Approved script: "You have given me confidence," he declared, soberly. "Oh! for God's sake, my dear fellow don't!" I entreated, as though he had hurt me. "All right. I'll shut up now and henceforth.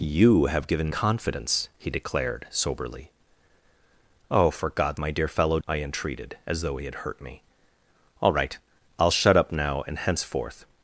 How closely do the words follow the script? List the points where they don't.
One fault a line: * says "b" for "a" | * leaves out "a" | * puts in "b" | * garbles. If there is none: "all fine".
* leaves out "me"
* leaves out "sake"
* leaves out "don't"